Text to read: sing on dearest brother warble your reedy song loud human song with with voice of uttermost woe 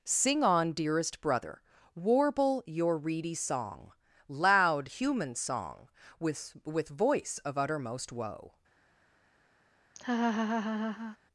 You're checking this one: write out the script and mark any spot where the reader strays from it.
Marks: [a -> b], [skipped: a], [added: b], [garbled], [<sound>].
sing on dearest brother warble your reedy song loud human song with with voice of uttermost woe [laugh]